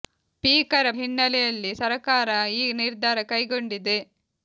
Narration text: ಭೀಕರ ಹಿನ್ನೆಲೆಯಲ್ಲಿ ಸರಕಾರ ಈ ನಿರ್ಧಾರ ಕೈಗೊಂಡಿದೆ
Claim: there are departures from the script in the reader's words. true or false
false